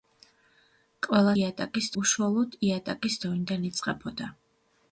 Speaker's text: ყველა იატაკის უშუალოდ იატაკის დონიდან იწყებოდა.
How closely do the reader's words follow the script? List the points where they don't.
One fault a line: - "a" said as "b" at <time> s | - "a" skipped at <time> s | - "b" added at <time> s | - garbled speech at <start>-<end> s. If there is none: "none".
none